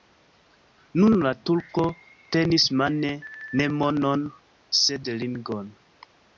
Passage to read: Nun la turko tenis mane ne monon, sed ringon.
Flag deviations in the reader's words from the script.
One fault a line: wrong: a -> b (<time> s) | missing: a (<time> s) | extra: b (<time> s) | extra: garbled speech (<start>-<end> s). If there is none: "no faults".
no faults